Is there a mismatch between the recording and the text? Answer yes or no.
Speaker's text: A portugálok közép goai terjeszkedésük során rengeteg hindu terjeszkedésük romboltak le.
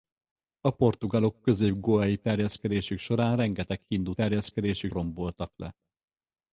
no